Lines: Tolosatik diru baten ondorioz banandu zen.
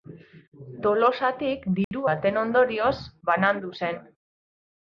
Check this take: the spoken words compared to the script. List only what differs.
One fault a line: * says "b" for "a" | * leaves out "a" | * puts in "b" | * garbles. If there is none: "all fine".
all fine